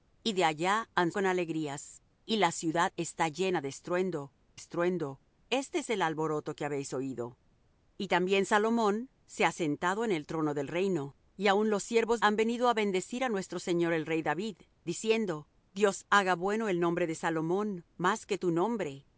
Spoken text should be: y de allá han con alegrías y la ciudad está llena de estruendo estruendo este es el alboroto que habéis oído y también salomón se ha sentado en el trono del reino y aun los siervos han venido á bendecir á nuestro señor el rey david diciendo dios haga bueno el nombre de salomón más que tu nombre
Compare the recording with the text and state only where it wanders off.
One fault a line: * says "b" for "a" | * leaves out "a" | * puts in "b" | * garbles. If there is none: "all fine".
all fine